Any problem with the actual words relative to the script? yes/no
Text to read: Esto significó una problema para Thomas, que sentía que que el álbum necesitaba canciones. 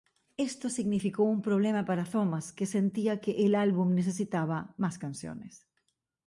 yes